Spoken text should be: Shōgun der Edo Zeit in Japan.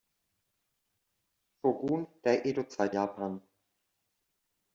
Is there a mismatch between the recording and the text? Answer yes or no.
yes